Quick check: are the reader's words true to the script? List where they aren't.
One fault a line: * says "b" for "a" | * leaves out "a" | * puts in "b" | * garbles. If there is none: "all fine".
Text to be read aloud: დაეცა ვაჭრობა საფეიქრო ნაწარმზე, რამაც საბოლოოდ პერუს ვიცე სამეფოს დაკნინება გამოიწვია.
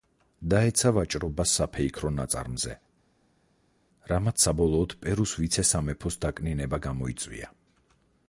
all fine